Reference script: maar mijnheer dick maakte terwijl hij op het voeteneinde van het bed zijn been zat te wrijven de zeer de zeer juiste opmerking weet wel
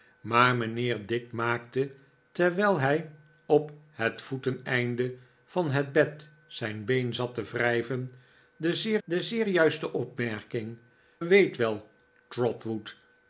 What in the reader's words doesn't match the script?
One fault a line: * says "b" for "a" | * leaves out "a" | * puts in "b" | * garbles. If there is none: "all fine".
all fine